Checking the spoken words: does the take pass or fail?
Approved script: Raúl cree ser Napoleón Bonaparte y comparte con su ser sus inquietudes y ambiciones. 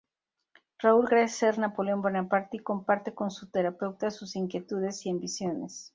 fail